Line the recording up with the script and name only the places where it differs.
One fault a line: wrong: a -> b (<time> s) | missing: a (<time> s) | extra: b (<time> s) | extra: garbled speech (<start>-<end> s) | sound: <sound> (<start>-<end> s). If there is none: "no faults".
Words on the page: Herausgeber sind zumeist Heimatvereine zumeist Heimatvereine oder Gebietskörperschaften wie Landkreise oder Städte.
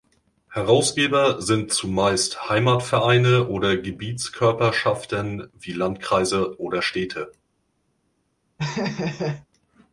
missing: zumeist Heimatvereine (3.5 s)
sound: laugh (8.6-9.5 s)